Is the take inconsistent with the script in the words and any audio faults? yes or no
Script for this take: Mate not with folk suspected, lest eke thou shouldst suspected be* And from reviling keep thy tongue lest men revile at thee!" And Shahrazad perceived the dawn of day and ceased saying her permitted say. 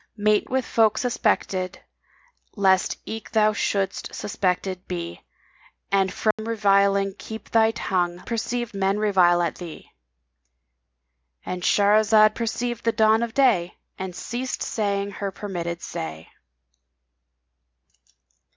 yes